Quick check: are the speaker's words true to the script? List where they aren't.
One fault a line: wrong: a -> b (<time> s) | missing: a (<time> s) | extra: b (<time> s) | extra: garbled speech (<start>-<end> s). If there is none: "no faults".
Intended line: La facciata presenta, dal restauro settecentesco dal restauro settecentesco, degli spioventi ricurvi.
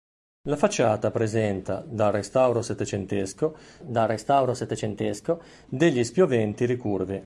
no faults